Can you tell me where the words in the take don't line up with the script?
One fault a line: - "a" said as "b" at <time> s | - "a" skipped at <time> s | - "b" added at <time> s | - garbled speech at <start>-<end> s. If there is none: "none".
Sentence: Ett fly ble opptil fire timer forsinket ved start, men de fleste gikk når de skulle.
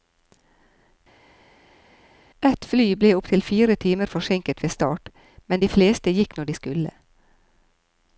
none